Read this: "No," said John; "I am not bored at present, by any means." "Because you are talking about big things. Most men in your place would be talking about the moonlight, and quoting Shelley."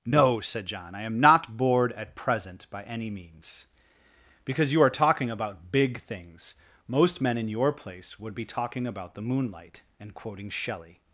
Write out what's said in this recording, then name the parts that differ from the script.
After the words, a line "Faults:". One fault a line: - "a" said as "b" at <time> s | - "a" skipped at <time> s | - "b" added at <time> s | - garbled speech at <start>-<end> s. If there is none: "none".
"No," said John; "I am not bored at present, by any means." "Because you are talking about big things. Most men in your place would be talking about the moonlight, and quoting Shelley."
Faults:
none